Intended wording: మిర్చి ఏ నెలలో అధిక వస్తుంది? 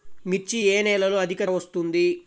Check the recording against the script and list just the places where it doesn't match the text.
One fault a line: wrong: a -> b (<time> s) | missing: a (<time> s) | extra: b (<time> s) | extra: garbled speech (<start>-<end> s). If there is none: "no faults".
no faults